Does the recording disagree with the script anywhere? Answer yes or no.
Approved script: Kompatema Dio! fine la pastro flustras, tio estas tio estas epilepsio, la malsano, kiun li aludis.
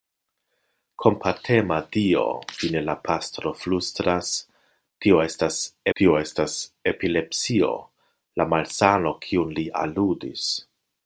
no